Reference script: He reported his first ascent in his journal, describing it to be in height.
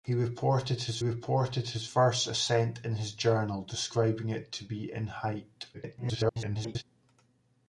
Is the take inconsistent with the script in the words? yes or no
yes